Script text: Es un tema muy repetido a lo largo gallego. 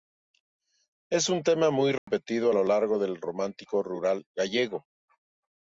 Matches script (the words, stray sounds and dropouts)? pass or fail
fail